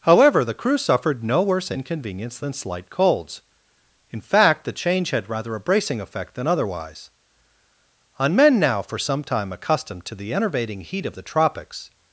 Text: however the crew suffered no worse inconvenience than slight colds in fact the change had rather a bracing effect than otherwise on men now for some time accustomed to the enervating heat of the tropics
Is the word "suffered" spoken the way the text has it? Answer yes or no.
yes